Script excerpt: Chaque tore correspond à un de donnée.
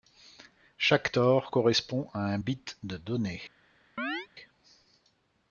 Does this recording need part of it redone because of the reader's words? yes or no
yes